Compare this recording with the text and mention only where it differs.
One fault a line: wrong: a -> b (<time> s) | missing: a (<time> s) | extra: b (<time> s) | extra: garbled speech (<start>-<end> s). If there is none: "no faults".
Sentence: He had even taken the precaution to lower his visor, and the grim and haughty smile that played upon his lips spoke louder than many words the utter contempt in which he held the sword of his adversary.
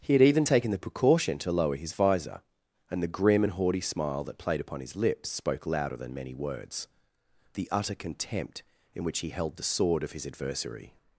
no faults